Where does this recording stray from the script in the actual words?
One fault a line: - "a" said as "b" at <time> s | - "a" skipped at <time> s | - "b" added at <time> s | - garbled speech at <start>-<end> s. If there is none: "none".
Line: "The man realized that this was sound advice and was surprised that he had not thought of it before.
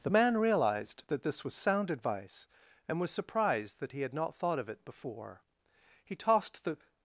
- "He tossed the" added at 6.0 s